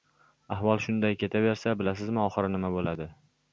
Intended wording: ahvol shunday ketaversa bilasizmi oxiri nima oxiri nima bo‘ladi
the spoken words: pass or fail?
fail